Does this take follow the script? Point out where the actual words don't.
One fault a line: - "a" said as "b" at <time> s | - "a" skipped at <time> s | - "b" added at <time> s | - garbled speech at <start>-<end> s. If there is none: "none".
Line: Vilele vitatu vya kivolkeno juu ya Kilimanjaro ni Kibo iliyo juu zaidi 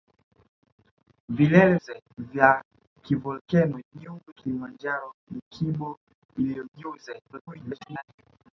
- "vitatu" said as "zaidi" at 1.8 s
- "ya" skipped at 4.2 s
- garbled speech at 7.3-8.0 s